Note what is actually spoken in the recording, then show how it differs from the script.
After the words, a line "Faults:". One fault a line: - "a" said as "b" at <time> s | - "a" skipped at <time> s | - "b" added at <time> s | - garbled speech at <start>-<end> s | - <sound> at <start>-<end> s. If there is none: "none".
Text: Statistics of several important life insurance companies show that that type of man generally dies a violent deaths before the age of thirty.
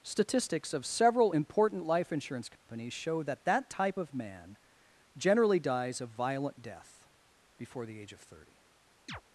Statistics of several important life insurance companies show that that type of man generally dies a violent death before the age of thirty.
Faults:
- dropout at 2.6-2.7 s
- "deaths" said as "death" at 6.6 s
- chirp at 9.1-9.2 s